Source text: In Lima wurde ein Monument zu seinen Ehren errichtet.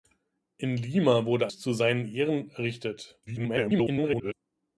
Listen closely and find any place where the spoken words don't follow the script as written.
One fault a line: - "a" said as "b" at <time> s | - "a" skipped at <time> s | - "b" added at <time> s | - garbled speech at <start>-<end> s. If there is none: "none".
- "ein Monument" skipped at 1.5 s
- garbled speech at 3.3-4.3 s